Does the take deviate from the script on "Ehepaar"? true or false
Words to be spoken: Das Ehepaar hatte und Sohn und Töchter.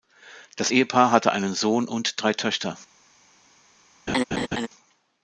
false